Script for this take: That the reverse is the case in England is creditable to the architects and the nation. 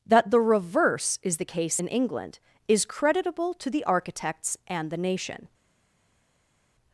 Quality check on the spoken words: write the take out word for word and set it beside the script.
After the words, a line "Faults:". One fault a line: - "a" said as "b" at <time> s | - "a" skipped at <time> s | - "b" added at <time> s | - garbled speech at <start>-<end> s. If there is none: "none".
That the reverse is the case in England is creditable to the architects and the nation.
Faults:
none